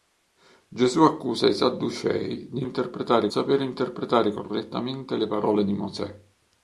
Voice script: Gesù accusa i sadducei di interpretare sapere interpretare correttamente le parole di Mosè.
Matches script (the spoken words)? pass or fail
pass